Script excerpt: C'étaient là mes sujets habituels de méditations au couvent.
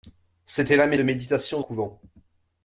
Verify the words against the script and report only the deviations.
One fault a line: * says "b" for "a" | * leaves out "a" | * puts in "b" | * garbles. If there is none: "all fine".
* leaves out "sujets habituels"
* leaves out "au"